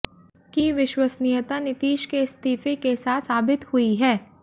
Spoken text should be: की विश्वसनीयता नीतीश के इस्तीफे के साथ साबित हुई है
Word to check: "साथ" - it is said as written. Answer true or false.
true